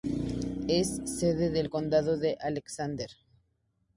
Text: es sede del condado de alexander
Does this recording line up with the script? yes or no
yes